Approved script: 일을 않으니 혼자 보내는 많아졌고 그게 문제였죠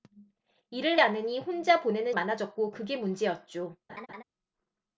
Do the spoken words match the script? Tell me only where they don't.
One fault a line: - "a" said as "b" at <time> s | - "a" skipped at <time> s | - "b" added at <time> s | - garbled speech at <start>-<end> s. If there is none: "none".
none